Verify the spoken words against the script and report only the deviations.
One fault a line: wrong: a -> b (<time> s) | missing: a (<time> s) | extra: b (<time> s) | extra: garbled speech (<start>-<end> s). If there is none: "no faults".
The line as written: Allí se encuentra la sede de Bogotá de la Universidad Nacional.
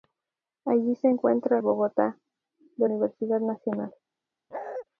missing: la sede de (1.6 s)
missing: la (2.9 s)